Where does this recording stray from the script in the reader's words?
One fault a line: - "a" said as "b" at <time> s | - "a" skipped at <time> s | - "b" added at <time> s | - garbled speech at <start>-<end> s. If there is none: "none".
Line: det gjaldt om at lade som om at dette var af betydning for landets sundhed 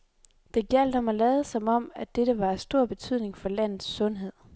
- "stor" added at 2.6 s